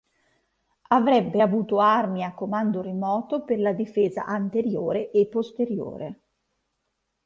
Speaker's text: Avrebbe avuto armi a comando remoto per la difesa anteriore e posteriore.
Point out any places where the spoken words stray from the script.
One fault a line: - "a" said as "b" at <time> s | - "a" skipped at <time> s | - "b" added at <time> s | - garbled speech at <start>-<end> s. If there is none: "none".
none